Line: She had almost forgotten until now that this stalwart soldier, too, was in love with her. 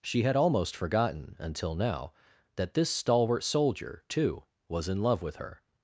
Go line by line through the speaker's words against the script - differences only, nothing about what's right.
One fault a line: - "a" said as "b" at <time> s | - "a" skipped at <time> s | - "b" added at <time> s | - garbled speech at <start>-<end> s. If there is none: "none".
none